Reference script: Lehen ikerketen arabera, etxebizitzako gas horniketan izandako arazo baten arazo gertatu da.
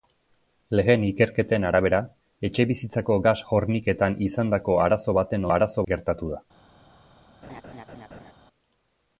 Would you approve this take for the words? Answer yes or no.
yes